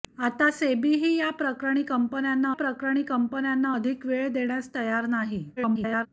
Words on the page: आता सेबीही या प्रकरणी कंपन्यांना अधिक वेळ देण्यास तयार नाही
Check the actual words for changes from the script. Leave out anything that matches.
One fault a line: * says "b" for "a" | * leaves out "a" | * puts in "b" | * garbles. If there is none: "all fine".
* puts in "प्रकरणी कंपन्यांना"
* garbles